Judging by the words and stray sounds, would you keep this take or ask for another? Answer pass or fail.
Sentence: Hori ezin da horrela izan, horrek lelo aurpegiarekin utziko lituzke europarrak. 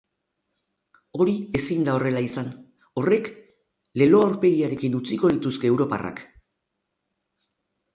pass